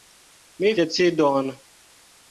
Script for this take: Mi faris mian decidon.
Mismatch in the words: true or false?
true